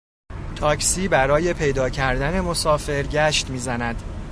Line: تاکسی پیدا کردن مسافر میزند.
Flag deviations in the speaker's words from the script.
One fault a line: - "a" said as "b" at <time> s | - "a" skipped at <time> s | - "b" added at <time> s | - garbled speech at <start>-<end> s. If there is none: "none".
- "برای" added at 1.1 s
- "گشت" added at 3.0 s